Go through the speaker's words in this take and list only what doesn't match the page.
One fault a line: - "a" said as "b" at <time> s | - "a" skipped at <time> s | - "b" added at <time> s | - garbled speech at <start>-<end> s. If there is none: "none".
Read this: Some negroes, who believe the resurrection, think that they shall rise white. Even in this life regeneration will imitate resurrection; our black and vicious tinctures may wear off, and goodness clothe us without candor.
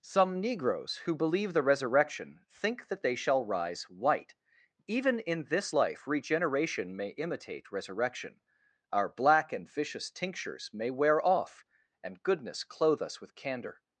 - "will" said as "may" at 6.9 s
- "without" said as "with" at 13.2 s